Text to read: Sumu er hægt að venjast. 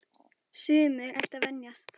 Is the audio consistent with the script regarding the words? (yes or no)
yes